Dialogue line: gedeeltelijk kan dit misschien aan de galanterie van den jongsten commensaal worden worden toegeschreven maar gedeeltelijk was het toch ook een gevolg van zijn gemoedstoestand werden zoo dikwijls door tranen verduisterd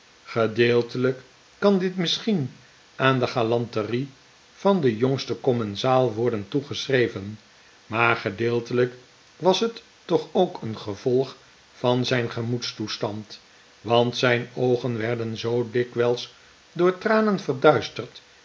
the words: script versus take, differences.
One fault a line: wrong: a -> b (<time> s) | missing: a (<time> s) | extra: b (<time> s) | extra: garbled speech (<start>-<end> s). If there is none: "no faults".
missing: worden (6.5 s)
extra: want zijn oogen (13.8 s)